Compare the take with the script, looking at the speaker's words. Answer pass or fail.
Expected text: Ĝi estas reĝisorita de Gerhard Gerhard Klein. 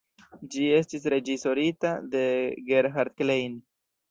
fail